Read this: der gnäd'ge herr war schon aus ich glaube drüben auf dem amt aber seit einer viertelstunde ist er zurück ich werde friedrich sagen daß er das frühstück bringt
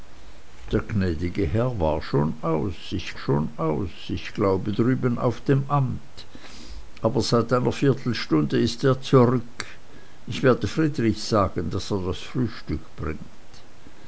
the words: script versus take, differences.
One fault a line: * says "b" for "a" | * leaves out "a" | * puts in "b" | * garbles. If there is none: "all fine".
* puts in "schon aus ich"